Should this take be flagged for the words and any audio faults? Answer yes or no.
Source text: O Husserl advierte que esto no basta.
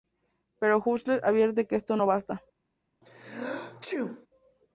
yes